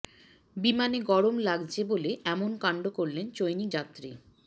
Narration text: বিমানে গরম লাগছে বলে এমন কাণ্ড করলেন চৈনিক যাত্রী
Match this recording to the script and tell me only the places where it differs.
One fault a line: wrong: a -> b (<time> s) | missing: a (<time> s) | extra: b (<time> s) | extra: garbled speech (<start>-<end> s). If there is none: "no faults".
no faults